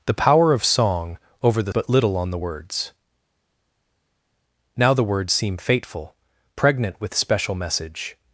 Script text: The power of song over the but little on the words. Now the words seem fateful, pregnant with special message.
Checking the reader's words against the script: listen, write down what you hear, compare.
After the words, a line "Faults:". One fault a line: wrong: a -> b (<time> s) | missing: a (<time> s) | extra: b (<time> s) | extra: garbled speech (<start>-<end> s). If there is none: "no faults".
The power of song over the but little on the words. Now the words seem fateful, pregnant with special message.
Faults:
no faults